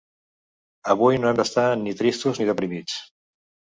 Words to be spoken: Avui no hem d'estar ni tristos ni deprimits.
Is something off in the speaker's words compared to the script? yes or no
no